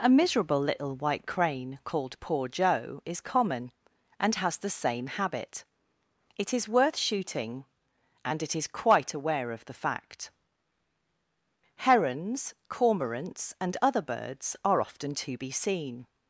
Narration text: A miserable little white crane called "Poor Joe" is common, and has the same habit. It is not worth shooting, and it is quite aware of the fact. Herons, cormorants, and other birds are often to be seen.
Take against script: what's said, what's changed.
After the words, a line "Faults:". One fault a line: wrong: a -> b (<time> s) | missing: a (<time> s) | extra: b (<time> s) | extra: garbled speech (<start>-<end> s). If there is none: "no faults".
A miserable little white crane called "Poor Joe" is common, and has the same habit. It is worth shooting, and it is quite aware of the fact. Herons, cormorants, and other birds are often to be seen.
Faults:
missing: not (6.7 s)